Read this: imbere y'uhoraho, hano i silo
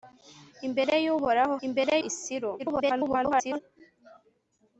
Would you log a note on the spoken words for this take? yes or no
yes